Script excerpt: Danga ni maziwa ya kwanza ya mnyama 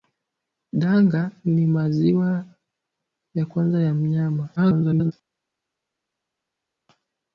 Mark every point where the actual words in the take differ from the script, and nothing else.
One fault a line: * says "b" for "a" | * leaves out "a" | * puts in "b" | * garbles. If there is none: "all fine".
* garbles